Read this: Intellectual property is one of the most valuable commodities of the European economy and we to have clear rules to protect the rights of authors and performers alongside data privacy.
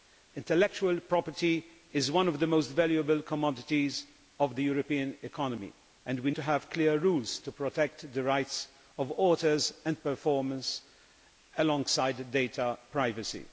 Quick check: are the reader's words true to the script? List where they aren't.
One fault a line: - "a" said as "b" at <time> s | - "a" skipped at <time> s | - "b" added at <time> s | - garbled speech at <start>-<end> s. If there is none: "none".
none